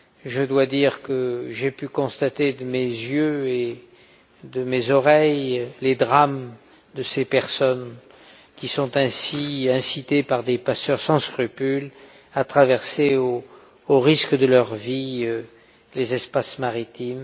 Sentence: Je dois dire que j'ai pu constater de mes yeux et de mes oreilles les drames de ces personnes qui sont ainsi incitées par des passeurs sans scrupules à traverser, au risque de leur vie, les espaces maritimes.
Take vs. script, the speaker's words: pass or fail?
pass